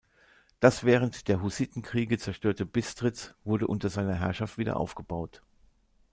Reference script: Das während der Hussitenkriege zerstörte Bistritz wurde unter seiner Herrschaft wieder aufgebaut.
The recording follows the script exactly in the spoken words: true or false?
true